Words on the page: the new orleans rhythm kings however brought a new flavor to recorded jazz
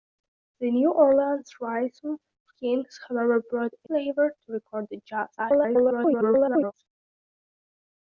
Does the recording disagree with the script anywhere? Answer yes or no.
yes